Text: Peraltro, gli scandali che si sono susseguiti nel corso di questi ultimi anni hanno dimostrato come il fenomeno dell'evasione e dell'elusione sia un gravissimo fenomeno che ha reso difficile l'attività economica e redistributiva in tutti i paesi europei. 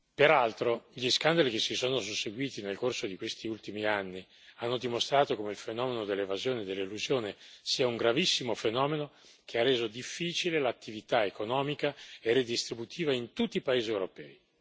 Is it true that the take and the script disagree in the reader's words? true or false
false